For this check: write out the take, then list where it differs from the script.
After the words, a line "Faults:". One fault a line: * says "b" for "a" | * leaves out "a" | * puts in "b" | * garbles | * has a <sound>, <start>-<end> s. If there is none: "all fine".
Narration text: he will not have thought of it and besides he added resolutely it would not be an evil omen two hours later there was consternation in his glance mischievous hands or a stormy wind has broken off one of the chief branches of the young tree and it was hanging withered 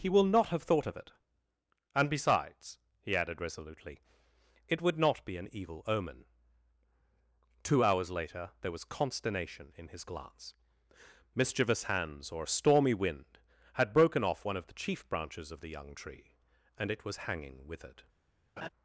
he will not have thought of it and besides he added resolutely it would not be an evil omen two hours later there was consternation in his glance mischievous hands or a stormy wind had broken off one of the chief branches of the young tree and it was hanging withered
Faults:
* says "had" for "has"
* has a laugh, 18.6-18.7 s